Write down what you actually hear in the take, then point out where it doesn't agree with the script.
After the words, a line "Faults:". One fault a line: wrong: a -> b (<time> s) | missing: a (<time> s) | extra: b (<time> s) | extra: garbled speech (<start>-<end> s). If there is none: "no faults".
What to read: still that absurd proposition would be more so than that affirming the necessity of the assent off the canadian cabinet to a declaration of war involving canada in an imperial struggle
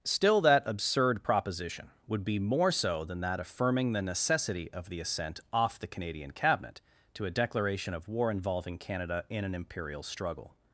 still that absurd proposition would be more so than that affirming the necessity of the assent off the canadian cabinet to a declaration of war involving canada in an imperial struggle
Faults:
no faults